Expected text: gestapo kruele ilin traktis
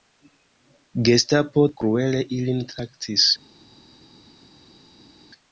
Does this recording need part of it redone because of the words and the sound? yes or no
no